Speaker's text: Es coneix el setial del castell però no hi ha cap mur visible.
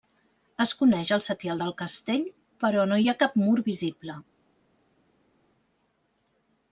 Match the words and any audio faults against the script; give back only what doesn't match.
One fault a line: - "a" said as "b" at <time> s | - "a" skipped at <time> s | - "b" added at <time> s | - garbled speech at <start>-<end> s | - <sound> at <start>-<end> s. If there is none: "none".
none